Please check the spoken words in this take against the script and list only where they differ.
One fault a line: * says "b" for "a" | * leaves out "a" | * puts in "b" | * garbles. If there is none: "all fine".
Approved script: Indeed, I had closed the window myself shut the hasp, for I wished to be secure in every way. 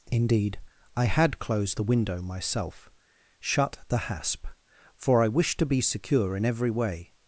all fine